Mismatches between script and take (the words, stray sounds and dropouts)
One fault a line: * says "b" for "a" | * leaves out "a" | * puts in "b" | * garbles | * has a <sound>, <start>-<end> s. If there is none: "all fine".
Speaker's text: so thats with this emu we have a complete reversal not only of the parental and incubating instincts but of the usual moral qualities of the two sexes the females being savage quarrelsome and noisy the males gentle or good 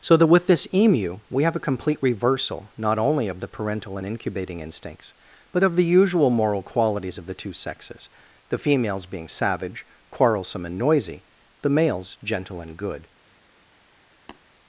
* says "that" for "thats"
* says "and" for "or"
* has a tap, 14.3-14.4 s